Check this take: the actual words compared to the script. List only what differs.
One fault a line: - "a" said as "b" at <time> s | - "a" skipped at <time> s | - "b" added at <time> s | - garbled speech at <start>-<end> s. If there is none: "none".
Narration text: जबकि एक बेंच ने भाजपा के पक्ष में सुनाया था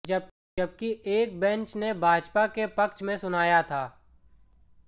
none